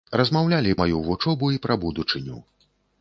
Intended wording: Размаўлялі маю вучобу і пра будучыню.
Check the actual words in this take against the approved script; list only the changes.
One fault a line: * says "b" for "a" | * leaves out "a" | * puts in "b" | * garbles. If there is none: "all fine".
all fine